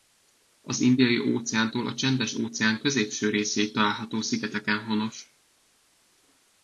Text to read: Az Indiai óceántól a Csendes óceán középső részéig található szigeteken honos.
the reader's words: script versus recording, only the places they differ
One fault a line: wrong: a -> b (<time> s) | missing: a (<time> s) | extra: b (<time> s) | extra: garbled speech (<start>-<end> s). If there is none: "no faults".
no faults